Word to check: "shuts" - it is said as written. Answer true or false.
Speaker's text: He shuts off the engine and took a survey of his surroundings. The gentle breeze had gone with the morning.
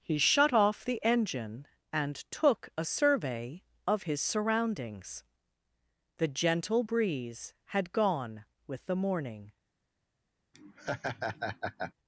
false